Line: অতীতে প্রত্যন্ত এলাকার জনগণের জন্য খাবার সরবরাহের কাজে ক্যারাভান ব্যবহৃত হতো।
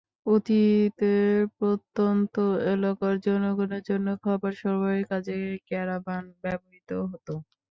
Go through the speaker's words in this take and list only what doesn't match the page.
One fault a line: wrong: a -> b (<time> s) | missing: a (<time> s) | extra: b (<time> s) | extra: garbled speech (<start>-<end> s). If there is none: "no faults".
no faults